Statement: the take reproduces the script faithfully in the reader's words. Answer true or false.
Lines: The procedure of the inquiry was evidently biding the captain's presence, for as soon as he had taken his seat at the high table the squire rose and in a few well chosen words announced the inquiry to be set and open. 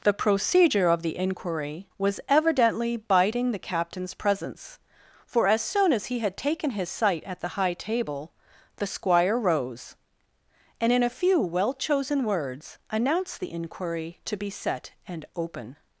false